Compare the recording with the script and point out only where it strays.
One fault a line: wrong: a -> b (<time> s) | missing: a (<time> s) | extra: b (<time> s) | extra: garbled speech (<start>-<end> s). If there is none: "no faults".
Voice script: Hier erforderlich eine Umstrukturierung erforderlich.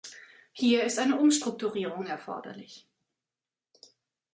wrong: erforderlich -> ist (0.8 s)